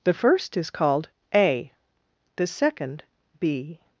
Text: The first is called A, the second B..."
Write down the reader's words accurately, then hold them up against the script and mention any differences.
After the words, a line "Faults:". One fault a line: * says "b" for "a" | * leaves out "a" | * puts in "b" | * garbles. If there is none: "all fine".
The first is called A, the second B..."
Faults:
all fine